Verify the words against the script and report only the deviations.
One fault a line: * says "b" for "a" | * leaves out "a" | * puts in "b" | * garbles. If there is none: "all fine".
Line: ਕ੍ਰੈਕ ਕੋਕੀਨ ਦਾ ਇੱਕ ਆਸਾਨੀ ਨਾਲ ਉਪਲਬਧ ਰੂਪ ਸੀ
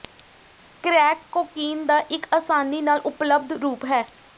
* says "ਹੈ" for "ਸੀ"